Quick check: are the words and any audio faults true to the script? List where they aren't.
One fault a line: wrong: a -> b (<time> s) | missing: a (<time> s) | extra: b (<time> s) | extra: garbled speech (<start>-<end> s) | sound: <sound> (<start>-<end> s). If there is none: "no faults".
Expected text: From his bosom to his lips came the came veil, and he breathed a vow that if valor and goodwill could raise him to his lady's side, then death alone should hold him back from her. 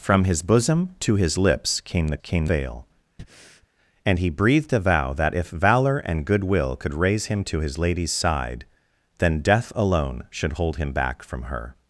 sound: breath (3.2-3.7 s)